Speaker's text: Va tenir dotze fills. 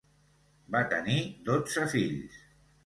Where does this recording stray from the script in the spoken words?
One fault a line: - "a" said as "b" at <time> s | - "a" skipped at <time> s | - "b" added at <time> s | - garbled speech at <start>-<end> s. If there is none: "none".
none